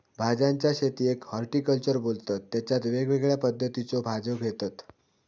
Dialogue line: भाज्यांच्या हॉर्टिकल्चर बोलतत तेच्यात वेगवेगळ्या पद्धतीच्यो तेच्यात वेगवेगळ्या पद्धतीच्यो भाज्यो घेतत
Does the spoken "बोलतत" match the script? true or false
true